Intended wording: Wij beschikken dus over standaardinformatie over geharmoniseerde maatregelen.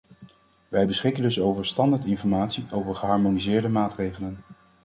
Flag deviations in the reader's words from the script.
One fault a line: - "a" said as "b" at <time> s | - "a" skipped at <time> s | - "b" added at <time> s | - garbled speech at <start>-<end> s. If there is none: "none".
none